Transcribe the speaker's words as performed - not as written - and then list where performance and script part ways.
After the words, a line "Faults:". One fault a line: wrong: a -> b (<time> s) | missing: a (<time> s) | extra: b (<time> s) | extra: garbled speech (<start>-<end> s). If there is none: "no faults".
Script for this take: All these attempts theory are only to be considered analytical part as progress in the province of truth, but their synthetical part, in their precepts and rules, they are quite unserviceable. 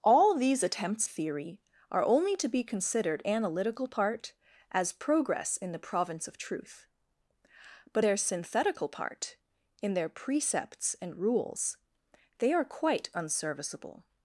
All these attempts theory are only to be considered analytical part as progress in the province of truth, but their synthetical part, in their precepts and rules, they are quite unserviceable.
Faults:
no faults